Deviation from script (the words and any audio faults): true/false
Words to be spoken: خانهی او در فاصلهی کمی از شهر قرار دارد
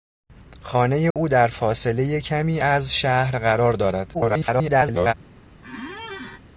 true